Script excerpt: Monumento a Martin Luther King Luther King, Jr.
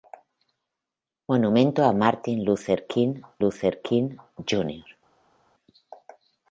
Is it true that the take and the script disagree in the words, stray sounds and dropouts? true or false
false